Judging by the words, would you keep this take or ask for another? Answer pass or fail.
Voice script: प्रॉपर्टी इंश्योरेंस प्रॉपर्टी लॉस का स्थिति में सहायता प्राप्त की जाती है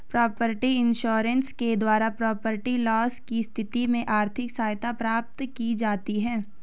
fail